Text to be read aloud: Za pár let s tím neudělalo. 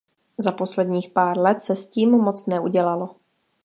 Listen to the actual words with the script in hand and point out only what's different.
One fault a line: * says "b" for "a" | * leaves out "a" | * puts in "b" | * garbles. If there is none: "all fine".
* puts in "posledních"
* puts in "se"
* puts in "moc"